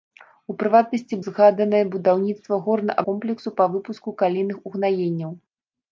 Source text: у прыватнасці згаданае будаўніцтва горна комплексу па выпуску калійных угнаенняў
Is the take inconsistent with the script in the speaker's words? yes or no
no